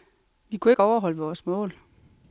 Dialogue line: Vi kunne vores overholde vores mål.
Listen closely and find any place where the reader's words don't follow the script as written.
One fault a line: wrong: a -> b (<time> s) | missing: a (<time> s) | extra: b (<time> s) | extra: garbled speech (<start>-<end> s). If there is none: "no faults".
wrong: vores -> ikke (0.7 s)